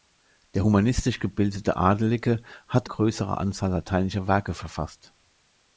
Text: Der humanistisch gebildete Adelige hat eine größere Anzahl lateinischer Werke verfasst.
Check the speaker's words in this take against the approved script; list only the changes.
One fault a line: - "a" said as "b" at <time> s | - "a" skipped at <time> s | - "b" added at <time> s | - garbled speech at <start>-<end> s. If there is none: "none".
- "eine" skipped at 2.9 s